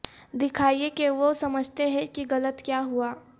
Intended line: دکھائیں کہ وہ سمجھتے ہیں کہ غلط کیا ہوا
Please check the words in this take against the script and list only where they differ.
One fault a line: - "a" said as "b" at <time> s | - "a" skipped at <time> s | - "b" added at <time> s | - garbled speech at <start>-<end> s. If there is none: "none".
none